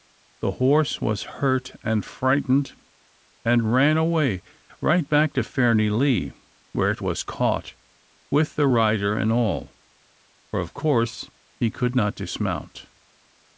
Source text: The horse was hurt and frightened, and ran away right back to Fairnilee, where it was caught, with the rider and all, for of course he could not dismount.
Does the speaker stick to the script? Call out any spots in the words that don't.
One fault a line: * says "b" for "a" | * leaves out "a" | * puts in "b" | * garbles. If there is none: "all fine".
all fine